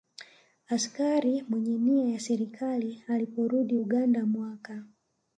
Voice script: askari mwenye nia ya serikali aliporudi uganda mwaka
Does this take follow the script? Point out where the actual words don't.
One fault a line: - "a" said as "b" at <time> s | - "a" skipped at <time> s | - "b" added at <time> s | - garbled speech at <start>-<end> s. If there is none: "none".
none